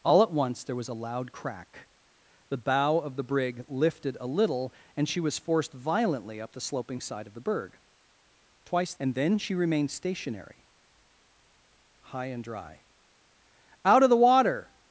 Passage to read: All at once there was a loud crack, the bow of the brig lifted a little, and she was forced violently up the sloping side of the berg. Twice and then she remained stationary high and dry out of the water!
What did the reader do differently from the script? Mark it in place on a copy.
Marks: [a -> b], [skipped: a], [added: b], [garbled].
All at once there was a loud crack, the bow of the brig lifted a little, and she was forced violently up the sloping side of the berg. Twice and then she remained stationary high and dry out of the water!